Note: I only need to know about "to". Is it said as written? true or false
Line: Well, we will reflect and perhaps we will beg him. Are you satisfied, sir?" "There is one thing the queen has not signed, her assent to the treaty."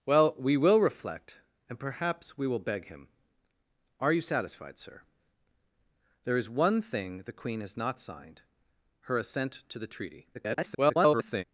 true